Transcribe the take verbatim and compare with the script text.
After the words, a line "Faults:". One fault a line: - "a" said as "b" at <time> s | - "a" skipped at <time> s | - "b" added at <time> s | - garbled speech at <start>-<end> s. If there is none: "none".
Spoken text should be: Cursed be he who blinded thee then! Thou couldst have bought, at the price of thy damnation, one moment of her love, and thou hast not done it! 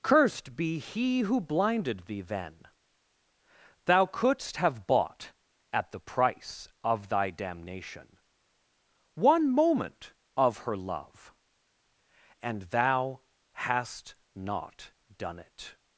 Cursed be he who blinded thee then! Thou couldst have bought, at the price of thy damnation, one moment of her love, and thou hast not done it!
Faults:
none